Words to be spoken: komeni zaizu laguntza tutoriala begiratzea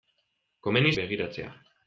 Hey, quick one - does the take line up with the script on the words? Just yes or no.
no